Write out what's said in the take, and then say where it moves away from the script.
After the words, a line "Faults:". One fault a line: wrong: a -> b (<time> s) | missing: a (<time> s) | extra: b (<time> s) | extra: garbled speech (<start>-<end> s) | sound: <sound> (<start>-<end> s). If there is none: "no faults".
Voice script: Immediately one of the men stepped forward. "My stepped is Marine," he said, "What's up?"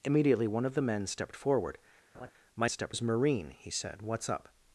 Immediately one of the men stepped forward. "My stepped is Marine," he said, "What's up?"
Faults:
sound: laugh (2.1-2.3 s)